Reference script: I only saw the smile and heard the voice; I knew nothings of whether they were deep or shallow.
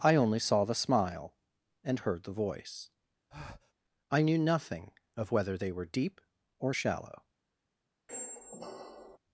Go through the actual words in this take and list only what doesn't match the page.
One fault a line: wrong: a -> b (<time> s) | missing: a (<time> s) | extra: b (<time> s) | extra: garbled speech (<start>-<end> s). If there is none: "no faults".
wrong: nothings -> nothing (4.4 s)